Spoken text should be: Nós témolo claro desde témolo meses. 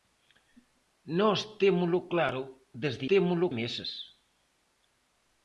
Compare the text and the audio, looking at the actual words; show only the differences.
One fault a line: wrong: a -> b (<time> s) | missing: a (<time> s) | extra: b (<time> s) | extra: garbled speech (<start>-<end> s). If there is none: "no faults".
no faults